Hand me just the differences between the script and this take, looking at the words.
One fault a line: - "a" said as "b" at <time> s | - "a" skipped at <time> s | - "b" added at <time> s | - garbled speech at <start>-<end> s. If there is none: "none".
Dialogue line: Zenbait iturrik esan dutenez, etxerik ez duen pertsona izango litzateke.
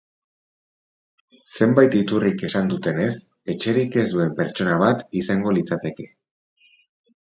- "bat" added at 4.9 s